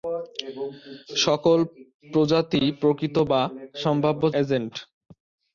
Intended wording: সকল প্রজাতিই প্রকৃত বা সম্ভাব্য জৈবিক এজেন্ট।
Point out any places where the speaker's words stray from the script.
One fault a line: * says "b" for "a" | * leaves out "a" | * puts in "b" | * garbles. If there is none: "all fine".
* leaves out "জৈবিক"